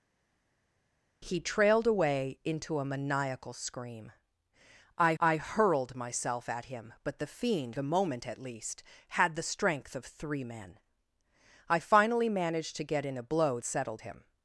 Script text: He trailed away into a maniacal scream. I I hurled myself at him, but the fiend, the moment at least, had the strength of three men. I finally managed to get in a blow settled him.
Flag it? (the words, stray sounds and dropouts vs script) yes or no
no